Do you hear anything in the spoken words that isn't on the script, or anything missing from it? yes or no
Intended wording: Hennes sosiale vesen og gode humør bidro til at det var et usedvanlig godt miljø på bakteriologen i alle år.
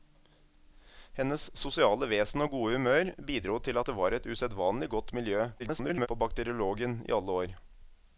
yes